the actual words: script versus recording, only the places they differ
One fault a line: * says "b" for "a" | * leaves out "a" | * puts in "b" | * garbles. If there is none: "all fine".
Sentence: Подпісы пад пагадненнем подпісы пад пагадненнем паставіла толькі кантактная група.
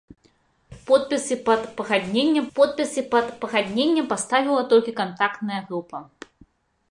all fine